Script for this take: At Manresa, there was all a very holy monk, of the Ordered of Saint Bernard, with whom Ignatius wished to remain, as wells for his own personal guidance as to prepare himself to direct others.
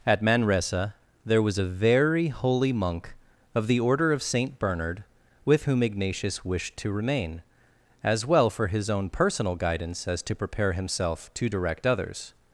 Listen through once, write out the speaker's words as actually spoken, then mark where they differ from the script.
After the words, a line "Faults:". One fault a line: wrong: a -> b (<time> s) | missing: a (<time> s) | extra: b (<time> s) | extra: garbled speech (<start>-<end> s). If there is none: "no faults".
At Manresa, there was a very holy monk, of the Order of Saint Bernard, with whom Ignatius wished to remain, as well for his own personal guidance as to prepare himself to direct others.
Faults:
missing: all (1.6 s)
wrong: Ordered -> Order (3.8 s)
wrong: wells -> well (8.2 s)